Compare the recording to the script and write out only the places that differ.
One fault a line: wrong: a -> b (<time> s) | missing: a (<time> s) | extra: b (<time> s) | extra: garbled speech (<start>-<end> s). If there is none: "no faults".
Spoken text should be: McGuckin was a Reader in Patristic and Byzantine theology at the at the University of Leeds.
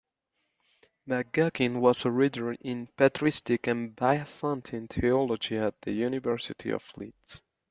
missing: at the (5.9 s)